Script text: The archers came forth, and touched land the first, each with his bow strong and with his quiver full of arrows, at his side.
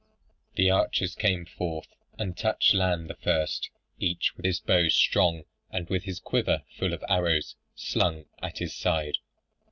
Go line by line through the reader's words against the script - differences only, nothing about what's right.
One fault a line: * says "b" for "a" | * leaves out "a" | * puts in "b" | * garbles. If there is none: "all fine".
* puts in "slung"